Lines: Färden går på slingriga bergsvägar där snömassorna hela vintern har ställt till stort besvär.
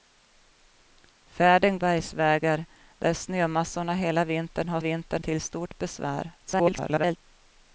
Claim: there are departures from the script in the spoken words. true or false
true